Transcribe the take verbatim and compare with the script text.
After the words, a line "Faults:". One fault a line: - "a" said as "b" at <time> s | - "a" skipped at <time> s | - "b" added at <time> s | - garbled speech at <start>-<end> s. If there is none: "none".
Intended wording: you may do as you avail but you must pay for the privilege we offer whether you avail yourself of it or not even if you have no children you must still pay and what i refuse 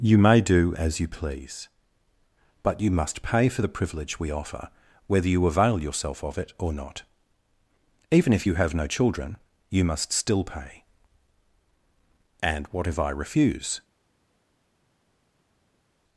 you may do as you please but you must pay for the privilege we offer whether you avail yourself of it or not even if you have no children you must still pay and what if i refuse
Faults:
- "avail" said as "please" at 1.1 s
- "if" added at 12.9 s